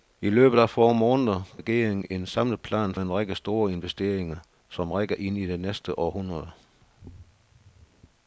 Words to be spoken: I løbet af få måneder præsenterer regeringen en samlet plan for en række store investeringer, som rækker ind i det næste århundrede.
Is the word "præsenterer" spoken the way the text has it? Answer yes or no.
no